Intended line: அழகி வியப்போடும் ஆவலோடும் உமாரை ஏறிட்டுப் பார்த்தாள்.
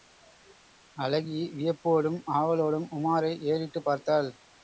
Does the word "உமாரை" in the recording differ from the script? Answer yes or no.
no